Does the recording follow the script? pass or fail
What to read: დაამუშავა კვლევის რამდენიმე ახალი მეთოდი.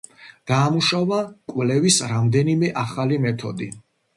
pass